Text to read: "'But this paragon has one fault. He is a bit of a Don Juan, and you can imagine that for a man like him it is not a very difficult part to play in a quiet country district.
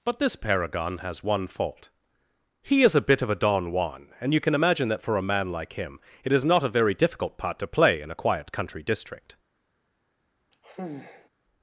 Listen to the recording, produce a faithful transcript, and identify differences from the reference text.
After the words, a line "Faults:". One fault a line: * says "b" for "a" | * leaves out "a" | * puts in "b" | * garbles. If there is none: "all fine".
"'But this paragon has one fault. He is a bit of a Don Juan, and you can imagine that for a man like him it is not a very difficult part to play in a quiet country district.
Faults:
all fine